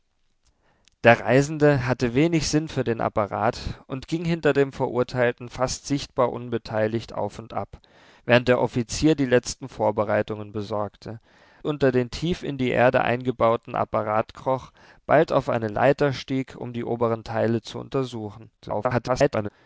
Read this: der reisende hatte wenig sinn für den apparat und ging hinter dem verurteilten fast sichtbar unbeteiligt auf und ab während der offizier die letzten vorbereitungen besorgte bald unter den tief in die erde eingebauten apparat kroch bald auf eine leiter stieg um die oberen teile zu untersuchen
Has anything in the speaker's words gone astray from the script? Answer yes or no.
yes